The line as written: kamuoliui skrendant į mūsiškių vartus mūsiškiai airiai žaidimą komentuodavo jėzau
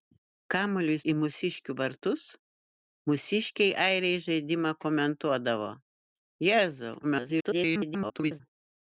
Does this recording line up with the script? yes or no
no